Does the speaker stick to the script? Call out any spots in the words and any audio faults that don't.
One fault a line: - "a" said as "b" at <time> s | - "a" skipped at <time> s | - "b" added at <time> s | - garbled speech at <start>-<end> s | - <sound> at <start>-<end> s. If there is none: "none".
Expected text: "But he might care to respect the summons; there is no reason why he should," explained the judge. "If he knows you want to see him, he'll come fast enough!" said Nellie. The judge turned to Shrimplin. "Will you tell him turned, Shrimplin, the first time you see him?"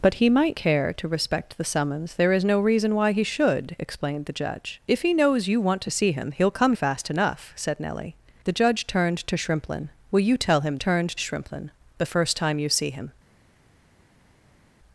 none